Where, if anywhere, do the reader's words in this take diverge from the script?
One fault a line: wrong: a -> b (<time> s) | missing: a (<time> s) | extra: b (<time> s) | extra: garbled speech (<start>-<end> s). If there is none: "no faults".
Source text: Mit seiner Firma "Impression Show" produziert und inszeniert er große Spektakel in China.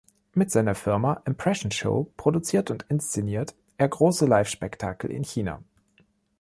extra: Live (4.2 s)